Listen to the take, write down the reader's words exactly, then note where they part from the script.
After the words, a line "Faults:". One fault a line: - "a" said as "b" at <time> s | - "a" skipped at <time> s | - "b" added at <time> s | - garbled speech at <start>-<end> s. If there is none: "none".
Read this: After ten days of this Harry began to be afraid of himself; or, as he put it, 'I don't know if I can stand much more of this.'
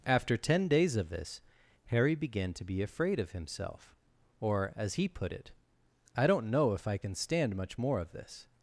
After ten days of this Harry began to be afraid of himself; or, as he put it, 'I don't know if I can stand much more of this.'
Faults:
none